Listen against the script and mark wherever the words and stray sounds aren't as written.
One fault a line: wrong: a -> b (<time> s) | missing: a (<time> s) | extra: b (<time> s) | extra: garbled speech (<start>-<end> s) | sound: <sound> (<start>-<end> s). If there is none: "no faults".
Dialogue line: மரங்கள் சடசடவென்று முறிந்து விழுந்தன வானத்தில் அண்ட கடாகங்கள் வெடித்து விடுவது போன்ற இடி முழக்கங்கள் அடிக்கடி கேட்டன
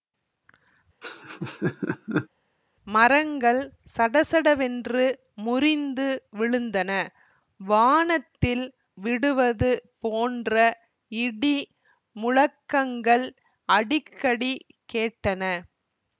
sound: laugh (1.0-2.3 s)
missing: அண்ட கடாகங்கள் வெடித்து (8.7 s)